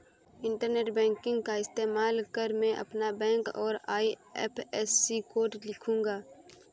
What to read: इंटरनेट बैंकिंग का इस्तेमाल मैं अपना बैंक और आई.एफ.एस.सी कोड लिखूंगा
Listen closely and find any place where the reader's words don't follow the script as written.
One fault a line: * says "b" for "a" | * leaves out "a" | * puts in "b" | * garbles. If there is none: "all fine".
* puts in "कर"